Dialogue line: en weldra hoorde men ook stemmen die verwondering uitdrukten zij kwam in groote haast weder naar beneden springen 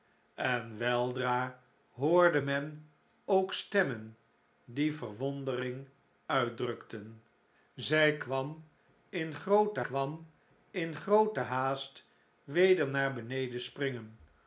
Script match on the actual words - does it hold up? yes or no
no